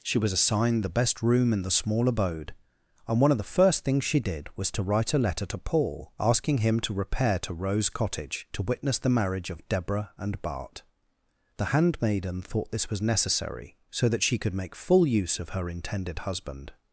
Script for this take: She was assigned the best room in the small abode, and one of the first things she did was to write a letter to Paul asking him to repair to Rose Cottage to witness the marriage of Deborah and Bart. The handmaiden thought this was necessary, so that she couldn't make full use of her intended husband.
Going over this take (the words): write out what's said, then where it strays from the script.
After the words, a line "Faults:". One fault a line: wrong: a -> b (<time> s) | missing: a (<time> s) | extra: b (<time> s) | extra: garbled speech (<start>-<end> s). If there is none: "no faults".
She was assigned the best room in the small abode, and one of the first things she did was to write a letter to Paul asking him to repair to Rose Cottage to witness the marriage of Deborah and Bart. The handmaiden thought this was necessary, so that she could make full use of her intended husband.
Faults:
wrong: couldn't -> could (14.4 s)